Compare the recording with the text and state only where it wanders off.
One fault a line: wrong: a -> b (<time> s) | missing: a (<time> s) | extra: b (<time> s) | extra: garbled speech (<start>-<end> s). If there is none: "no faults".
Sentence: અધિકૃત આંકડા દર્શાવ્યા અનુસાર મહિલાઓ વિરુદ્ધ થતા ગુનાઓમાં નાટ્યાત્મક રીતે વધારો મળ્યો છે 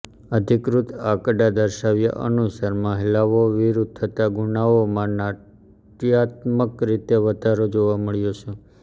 extra: જોવા (7.8 s)